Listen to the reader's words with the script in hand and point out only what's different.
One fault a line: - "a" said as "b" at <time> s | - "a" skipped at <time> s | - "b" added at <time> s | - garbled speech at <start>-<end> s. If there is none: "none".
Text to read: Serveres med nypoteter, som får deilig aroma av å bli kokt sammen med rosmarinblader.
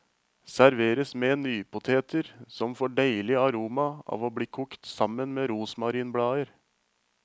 none